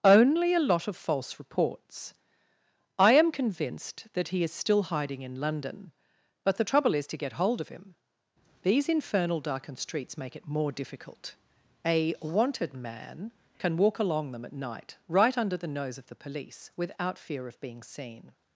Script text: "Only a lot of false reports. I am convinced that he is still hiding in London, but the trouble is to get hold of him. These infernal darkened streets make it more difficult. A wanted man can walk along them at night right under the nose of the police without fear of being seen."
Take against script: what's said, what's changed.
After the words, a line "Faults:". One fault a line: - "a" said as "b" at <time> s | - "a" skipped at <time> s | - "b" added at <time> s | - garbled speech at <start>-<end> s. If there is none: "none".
"Only a lot of false reports. I am convinced that he is still hiding in London, but the trouble is to get hold of him. These infernal darkened streets make it more difficult. A wanted man can walk along them at night right under the nose of the police without fear of being seen."
Faults:
none